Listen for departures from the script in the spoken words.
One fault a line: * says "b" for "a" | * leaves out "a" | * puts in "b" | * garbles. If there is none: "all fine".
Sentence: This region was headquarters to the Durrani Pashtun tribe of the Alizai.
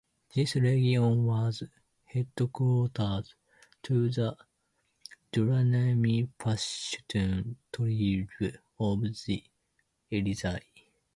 all fine